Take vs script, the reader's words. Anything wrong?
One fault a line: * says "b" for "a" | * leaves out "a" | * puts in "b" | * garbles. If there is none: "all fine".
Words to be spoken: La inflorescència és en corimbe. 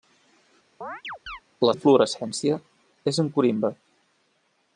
all fine